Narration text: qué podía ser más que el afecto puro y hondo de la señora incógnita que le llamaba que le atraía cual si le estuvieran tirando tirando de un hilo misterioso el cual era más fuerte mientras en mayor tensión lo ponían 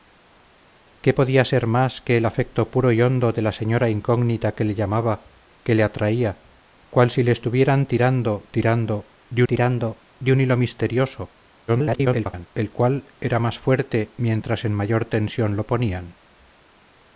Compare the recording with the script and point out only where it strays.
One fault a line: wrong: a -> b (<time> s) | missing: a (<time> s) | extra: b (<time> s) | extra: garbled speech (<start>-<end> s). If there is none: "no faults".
extra: tirando de (9.5 s)
extra: garbled speech (11.7-12.5 s)